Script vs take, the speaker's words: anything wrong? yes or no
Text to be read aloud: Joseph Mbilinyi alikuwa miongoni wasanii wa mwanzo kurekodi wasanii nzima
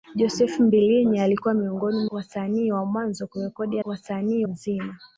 no